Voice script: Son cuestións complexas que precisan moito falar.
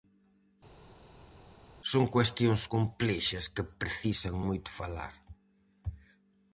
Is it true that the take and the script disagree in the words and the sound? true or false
false